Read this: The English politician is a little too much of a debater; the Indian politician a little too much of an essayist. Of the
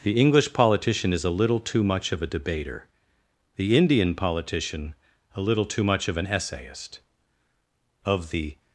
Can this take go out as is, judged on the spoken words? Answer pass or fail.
pass